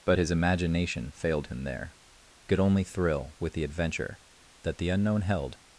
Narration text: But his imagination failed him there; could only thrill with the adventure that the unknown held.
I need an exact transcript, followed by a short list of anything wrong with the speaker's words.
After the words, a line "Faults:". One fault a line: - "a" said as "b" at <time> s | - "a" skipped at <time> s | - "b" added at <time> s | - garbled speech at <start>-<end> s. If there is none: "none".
But his imagination failed him there; could only thrill with the adventure that the unknown held.
Faults:
none